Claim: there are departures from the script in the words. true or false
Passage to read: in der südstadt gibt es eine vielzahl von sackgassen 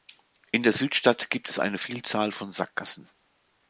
false